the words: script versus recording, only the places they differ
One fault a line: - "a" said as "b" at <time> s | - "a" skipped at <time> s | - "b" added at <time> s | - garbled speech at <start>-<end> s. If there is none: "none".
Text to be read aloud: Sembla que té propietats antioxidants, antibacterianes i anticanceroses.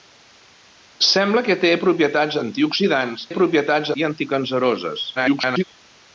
- "antibacterianes" said as "propietats" at 3.4 s
- garbled speech at 5.2-5.6 s